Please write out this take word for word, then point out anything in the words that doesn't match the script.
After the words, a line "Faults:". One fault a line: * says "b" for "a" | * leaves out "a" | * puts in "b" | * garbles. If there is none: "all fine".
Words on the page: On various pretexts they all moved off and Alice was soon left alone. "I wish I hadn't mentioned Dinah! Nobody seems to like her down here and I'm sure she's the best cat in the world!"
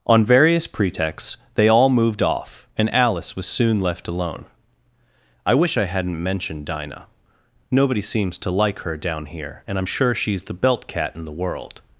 On various pretexts they all moved off and Alice was soon left alone. "I wish I hadn't mentioned Dinah! Nobody seems to like her down here and I'm sure she's the belt cat in the world!"
Faults:
* says "belt" for "best"